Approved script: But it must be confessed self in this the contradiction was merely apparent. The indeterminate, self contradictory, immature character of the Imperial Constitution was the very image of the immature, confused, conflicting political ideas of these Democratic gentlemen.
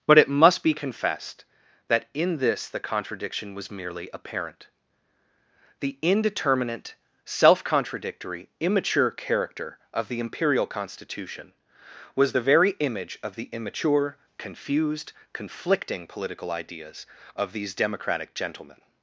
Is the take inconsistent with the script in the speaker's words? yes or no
yes